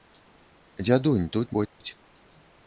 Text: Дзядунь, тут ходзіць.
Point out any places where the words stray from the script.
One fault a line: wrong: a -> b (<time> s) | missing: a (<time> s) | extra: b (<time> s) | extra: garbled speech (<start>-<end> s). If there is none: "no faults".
no faults